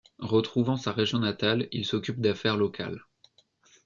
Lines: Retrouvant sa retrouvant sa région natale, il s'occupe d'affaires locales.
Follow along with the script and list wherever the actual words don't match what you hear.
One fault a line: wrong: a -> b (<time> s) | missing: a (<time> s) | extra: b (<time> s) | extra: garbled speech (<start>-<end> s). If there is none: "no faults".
missing: retrouvant sa (0.9 s)